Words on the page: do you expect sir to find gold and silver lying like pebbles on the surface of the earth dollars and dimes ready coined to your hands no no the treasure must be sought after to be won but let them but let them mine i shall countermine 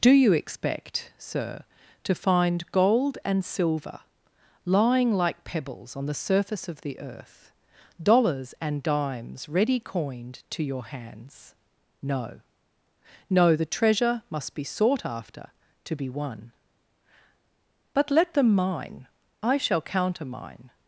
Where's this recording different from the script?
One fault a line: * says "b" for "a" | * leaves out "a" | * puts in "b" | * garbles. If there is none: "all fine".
* leaves out "but let them"